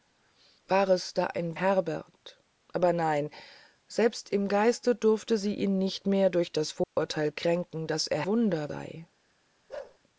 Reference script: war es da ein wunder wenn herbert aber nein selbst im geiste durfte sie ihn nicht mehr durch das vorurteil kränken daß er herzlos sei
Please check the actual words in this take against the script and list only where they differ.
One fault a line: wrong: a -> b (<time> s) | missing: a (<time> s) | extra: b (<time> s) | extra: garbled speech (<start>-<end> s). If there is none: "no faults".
missing: wunder wenn (1.6 s)
wrong: herzlos -> wunder (8.3 s)